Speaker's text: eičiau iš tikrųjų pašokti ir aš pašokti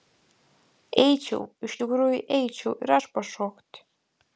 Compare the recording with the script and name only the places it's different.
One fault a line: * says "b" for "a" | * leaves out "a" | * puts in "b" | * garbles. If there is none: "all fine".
* says "eičiau" for "pašokti"